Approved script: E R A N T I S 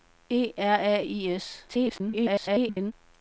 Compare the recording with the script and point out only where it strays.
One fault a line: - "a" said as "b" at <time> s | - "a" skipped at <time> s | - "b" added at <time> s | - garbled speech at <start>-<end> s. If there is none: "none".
- "N T" skipped at 1.0 s
- garbled speech at 1.7-2.9 s